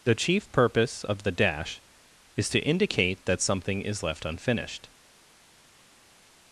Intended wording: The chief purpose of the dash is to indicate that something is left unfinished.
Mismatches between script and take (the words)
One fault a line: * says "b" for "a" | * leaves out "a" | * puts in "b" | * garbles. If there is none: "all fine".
all fine